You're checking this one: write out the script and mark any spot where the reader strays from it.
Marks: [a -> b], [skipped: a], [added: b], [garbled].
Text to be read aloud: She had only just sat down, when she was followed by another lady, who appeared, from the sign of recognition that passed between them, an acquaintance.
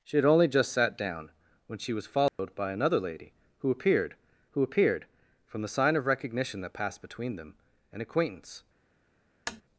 She had only just sat down, when she was followed by another lady, who appeared, [added: who appeared] from the sign of recognition that passed between them, an acquaintance.